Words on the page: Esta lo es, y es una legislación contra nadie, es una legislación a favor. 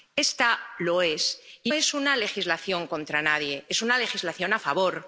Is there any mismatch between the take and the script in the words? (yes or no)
no